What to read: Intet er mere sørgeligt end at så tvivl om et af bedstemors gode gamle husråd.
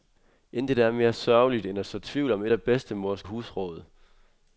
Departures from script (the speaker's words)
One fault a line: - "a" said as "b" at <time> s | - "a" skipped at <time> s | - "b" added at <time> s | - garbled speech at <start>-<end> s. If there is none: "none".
- "gode gamle" skipped at 3.2 s